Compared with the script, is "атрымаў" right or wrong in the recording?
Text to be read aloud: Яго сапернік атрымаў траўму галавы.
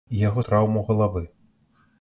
wrong